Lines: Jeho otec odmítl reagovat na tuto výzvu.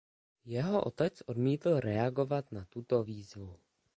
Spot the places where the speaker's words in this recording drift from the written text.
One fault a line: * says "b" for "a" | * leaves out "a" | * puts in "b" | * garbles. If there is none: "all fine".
all fine